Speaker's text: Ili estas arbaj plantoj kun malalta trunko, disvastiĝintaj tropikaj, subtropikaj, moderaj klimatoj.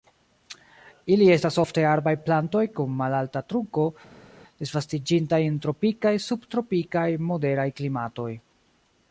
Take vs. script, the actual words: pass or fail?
fail